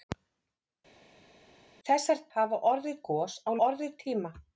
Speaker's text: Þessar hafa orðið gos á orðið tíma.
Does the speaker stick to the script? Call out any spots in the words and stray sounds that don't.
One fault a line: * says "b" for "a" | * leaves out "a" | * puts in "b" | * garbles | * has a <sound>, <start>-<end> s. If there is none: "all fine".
all fine